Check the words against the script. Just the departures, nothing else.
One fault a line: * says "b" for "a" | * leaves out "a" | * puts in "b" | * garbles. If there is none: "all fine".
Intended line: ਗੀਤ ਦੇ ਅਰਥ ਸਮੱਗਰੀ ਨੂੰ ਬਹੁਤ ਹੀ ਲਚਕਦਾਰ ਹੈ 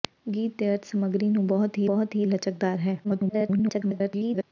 * puts in "ਬਹੁਤ ਹੀ"
* garbles